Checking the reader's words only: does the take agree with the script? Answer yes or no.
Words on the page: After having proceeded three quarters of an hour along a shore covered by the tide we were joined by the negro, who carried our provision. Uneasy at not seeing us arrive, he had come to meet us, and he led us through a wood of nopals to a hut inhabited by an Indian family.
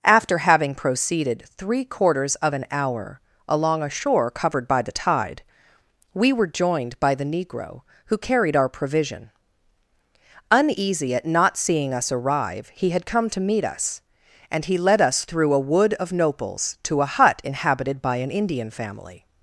yes